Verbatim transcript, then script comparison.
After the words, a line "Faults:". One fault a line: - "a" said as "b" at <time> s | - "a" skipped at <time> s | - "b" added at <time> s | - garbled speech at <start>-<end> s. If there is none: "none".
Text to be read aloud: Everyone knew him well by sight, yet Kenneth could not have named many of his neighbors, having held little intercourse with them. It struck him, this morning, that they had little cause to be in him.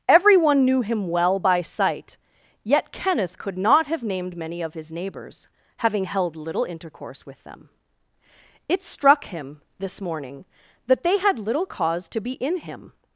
Everyone knew him well by sight, yet Kenneth could not have named many of his neighbors, having held little intercourse with them. It struck him, this morning, that they had little cause to be in him.
Faults:
none